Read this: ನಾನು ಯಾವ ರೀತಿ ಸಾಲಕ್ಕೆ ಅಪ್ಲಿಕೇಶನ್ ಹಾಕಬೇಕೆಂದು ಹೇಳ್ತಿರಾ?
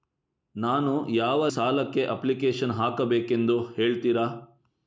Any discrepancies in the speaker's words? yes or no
yes